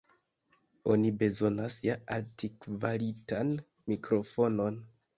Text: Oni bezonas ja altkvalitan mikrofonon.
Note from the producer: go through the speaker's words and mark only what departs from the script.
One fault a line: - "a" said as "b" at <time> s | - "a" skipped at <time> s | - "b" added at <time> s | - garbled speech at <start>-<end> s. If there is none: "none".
none